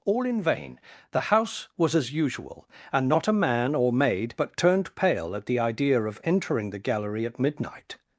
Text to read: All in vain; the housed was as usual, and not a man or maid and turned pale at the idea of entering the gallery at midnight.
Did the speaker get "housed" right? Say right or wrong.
wrong